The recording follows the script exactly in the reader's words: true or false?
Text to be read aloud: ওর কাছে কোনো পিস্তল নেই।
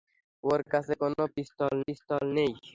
false